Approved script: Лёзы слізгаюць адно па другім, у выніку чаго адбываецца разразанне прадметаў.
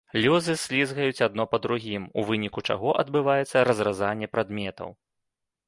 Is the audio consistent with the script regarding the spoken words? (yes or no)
yes